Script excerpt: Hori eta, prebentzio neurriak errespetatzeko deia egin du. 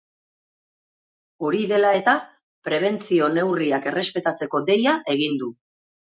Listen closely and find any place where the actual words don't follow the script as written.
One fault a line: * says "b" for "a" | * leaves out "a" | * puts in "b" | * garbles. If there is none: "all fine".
* puts in "dela"